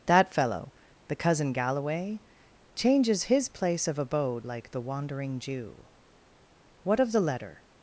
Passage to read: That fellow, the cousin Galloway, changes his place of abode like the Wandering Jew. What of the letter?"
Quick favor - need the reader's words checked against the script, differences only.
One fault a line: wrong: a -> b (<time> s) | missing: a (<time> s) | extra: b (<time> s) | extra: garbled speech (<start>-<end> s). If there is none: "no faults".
no faults